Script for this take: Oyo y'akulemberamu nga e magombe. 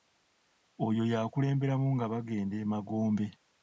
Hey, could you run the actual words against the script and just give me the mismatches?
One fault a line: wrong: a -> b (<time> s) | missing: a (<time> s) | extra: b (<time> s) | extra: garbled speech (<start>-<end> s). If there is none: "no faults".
extra: bagenda (2.1 s)